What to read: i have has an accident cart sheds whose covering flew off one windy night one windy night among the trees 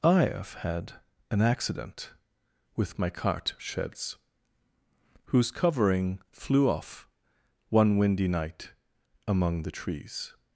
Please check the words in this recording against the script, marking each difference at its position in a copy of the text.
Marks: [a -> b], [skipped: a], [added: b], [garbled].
i have [has -> had] an accident [added: with my] cart sheds whose covering flew off one windy night [skipped: one windy night] among the trees